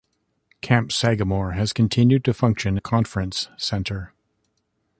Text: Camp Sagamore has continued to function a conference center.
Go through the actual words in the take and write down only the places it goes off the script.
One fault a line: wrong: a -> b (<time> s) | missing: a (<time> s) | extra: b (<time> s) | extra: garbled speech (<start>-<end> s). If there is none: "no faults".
no faults